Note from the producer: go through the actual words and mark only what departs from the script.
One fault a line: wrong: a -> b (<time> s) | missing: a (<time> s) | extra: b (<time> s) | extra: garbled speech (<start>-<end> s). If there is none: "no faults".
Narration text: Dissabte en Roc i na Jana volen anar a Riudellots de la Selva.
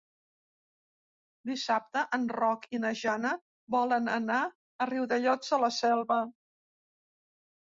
no faults